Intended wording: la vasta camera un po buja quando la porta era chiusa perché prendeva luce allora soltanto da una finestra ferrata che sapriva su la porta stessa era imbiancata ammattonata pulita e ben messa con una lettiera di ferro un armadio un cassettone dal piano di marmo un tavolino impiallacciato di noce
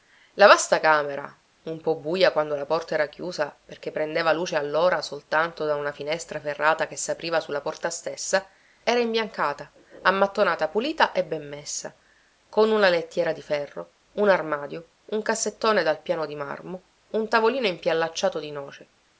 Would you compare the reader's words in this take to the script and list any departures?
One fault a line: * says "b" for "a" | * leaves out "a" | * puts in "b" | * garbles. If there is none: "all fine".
all fine